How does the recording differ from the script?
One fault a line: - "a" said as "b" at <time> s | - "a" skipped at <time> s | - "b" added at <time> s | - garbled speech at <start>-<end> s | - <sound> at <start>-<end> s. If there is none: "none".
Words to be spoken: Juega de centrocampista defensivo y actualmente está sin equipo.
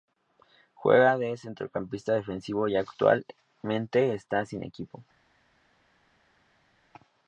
none